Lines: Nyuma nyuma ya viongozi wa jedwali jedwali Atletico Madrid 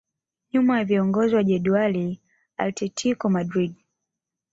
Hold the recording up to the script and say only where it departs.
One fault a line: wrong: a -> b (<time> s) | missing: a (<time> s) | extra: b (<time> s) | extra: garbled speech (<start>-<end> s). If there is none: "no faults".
missing: nyuma (0.8 s)
missing: jedwali (2.2 s)